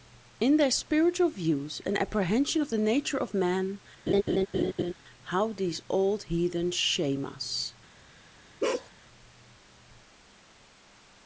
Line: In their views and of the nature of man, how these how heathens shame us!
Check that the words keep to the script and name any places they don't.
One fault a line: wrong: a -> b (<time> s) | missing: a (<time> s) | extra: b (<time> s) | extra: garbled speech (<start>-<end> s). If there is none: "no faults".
extra: spiritual (0.7 s)
extra: apprehension (1.9 s)
wrong: how -> old (5.9 s)